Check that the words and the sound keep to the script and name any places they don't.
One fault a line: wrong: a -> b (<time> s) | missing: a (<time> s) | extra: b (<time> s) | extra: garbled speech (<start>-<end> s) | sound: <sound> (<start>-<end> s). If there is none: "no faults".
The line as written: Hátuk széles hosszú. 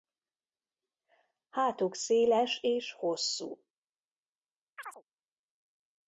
extra: és (2.6 s)
sound: chirp (4.8-5.0 s)